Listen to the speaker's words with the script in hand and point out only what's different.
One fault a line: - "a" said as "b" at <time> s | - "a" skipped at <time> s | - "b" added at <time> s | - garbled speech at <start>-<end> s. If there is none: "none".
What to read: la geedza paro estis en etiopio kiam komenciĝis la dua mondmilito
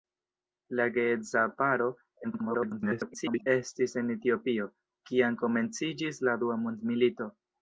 - garbled speech at 2.2-3.5 s